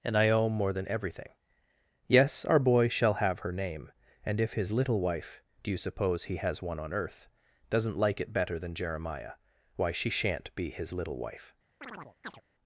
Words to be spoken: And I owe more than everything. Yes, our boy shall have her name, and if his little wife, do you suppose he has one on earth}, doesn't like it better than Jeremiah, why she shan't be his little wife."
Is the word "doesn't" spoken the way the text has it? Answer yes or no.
yes